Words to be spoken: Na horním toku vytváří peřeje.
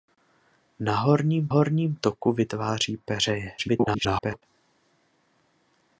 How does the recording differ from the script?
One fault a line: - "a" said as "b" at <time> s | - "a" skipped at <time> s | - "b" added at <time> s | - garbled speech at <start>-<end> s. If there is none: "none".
- "horním" added at 1.5 s
- garbled speech at 3.6-4.4 s